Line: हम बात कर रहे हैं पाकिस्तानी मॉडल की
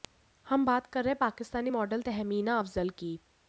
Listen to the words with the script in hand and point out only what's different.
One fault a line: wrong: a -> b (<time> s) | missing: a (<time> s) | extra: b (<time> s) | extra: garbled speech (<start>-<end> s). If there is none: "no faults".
extra: तहमीना अफजल (2.0 s)